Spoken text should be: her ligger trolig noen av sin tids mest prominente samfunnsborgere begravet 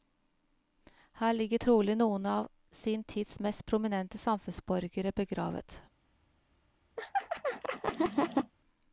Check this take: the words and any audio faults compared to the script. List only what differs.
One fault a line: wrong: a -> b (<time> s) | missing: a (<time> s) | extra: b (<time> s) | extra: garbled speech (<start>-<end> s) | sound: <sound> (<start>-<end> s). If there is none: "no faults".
sound: laugh (7.0-8.5 s)